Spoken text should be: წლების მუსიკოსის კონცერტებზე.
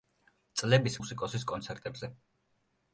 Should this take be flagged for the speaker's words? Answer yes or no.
no